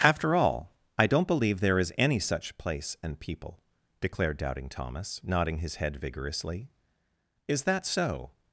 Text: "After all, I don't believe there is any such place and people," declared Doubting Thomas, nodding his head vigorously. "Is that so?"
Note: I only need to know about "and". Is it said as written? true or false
true